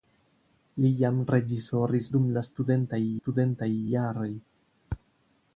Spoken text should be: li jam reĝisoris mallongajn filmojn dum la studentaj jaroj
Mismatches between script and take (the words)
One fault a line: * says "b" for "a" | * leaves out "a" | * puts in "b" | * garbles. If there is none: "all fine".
* leaves out "mallongajn filmojn"
* puts in "studentaj"